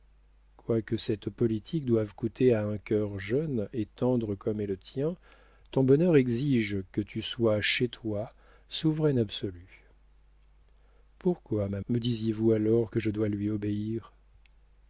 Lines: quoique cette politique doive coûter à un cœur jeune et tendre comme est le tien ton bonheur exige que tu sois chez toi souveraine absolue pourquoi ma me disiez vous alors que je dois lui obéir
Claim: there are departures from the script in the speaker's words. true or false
false